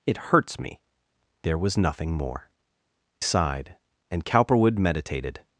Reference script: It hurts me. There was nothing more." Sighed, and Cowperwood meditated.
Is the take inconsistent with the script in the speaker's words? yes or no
no